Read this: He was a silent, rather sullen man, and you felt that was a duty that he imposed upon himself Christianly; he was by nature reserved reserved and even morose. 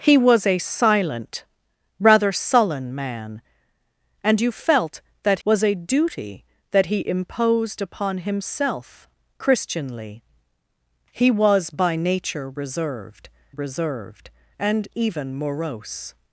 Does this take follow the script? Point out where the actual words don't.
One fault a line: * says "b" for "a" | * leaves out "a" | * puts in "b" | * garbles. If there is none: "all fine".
all fine